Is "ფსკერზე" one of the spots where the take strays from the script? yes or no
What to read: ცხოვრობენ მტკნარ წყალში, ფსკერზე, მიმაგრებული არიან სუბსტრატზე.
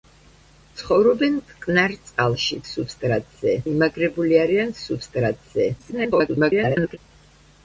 yes